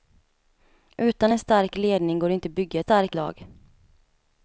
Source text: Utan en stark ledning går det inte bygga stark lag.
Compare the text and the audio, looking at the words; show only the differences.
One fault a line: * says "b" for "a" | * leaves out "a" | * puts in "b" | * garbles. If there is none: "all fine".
all fine